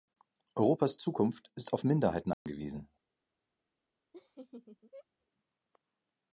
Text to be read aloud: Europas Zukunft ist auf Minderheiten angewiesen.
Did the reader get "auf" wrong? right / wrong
right